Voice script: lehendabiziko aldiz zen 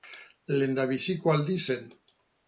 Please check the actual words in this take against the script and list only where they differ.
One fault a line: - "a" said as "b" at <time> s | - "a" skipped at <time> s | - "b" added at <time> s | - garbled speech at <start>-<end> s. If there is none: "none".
none